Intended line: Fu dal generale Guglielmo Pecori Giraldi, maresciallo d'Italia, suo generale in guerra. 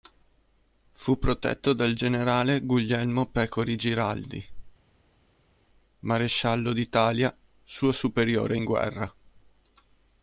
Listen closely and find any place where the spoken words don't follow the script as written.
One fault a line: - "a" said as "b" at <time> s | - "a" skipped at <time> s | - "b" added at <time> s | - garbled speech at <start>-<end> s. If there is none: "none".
- "protetto" added at 1.2 s
- "generale" said as "superiore" at 7.9 s